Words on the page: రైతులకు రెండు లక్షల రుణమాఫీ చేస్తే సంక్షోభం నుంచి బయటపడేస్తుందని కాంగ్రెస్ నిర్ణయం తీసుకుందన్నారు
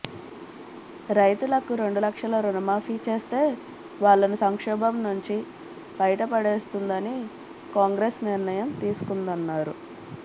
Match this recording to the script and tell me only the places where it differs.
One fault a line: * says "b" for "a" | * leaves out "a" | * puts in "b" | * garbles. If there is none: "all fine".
* puts in "వాళ్లను"